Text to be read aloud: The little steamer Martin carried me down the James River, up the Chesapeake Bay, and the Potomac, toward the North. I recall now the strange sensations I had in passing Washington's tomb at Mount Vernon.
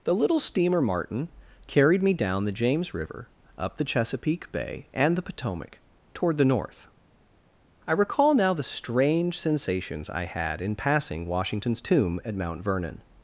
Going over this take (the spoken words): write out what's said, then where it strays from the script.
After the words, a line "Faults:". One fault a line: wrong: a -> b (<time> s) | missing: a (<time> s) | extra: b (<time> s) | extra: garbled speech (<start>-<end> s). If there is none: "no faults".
The little steamer Martin carried me down the James River, up the Chesapeake Bay, and the Potomac, toward the North. I recall now the strange sensations I had in passing Washington's tomb at Mount Vernon.
Faults:
no faults